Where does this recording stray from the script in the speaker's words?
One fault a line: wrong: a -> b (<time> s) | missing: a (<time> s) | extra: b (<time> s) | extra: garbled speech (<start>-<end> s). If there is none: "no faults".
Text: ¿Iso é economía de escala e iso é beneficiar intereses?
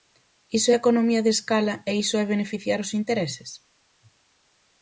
extra: os (2.8 s)